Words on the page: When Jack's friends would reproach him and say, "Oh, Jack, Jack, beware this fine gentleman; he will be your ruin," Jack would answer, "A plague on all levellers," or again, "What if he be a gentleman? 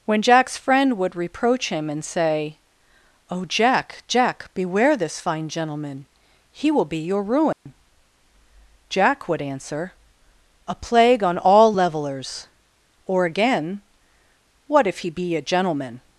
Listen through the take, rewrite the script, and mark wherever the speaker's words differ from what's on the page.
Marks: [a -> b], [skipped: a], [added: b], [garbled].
When Jack's [friends -> friend] would reproach him and say, "Oh, Jack, Jack, beware this fine gentleman; he will be your ruin," Jack would answer, "A plague on all levellers," or again, "What if he be a gentleman?